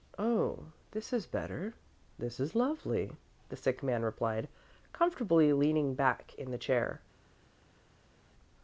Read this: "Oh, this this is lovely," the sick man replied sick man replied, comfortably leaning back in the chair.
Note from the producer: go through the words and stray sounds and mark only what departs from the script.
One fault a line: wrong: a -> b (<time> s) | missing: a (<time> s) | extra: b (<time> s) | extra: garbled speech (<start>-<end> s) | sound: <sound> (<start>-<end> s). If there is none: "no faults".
extra: is better (1.1 s)
missing: sick man replied (4.5 s)